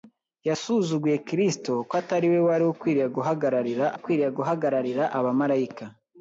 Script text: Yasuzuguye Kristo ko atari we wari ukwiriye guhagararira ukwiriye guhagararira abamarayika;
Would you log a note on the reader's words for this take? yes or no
no